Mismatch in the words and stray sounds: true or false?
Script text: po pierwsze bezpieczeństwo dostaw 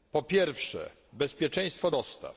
false